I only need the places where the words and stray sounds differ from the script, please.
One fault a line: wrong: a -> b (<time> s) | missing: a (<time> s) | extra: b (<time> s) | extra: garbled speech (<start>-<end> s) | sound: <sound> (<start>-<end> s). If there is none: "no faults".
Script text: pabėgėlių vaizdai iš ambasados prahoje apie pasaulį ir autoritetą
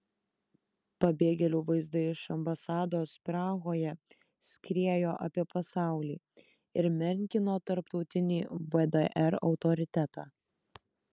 extra: skriejo (4.5 s)
extra: menkino tarptautinį vdr (7.0 s)